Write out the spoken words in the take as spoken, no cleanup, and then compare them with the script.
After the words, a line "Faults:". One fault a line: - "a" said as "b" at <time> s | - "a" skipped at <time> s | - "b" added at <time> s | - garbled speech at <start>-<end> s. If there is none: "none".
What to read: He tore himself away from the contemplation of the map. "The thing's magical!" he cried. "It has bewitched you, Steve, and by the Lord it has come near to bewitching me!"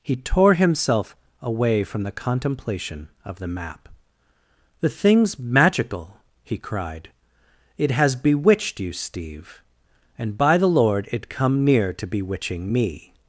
He tore himself away from the contemplation of the map. "The thing's magical!" he cried. "It has bewitched you, Steve, and by the Lord it come near to bewitching me!"
Faults:
- "has" skipped at 11.3 s